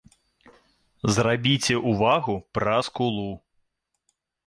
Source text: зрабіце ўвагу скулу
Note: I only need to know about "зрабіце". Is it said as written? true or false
true